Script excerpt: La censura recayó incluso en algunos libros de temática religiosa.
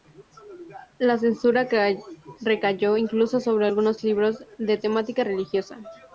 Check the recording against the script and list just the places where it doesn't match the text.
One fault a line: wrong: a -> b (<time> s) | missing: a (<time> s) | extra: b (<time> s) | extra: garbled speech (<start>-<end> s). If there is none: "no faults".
wrong: en -> sobre (3.4 s)